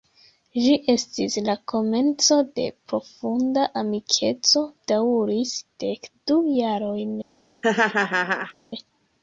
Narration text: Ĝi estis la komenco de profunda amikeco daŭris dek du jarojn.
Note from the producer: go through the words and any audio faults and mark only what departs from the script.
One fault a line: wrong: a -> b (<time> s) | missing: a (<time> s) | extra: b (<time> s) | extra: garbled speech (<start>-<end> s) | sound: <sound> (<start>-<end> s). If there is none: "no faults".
sound: laugh (7.6-8.5 s)